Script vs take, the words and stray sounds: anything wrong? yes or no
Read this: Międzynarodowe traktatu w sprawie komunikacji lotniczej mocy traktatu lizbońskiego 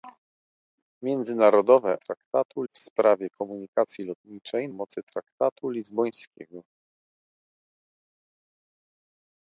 no